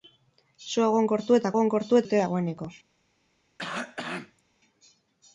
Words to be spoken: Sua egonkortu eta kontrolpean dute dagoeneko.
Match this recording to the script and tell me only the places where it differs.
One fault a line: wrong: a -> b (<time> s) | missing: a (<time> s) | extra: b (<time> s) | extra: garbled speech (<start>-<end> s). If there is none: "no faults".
wrong: kontrolpean -> egonkortu (1.6 s)